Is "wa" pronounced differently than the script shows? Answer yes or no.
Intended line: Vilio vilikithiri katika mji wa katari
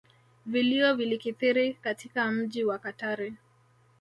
no